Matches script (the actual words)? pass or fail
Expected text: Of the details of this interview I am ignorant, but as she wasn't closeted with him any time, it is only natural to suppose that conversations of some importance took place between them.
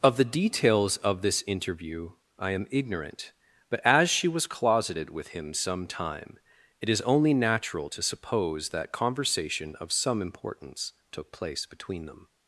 fail